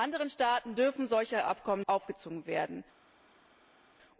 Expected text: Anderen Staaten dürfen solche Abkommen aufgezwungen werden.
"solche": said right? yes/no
yes